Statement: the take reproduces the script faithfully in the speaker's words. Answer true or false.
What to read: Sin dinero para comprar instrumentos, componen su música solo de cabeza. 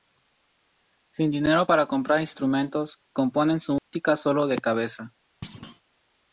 true